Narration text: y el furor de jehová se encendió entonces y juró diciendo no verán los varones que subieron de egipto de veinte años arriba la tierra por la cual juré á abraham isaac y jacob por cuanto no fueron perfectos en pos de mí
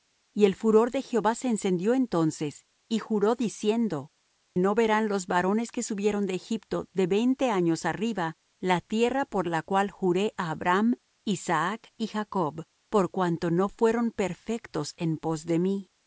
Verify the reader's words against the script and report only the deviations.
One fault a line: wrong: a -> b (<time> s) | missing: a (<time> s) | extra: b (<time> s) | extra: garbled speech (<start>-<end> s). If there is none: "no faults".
no faults